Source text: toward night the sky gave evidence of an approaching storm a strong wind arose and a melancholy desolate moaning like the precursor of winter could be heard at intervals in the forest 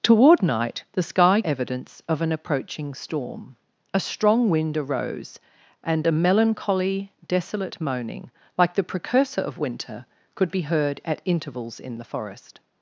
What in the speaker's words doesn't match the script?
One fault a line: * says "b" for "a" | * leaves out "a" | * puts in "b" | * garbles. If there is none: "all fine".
* leaves out "gave"